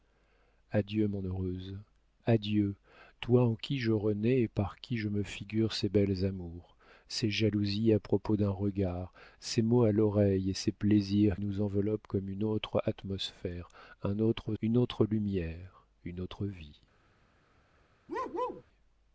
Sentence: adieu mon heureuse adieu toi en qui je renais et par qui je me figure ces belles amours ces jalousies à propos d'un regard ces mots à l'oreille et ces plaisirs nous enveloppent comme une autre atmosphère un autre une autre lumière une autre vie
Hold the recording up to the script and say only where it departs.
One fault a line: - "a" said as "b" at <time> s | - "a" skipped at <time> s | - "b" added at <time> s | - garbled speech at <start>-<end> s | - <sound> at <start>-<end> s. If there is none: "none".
- bark at 18.1-18.6 s